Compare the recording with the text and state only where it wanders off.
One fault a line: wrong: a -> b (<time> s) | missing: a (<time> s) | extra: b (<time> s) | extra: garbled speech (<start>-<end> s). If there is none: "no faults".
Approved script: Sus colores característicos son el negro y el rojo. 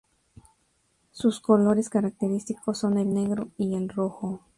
no faults